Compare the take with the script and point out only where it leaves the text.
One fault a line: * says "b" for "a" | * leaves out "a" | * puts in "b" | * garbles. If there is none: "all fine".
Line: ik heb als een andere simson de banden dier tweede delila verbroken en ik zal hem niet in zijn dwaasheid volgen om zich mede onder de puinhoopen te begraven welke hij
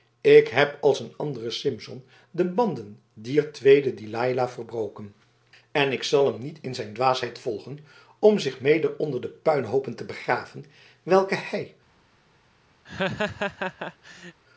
all fine